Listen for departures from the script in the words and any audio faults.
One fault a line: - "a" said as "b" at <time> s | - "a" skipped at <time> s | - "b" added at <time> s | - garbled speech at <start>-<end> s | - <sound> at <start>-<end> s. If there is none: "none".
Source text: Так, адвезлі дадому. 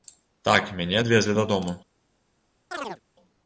- "мяне" added at 0.8 s
- chirp at 2.7-3.0 s